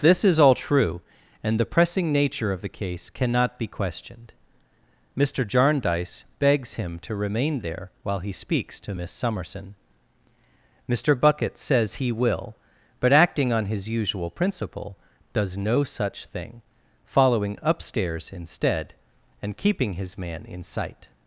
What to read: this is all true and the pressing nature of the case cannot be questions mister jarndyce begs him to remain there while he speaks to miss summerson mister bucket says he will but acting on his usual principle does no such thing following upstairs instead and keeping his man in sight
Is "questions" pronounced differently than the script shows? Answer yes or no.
yes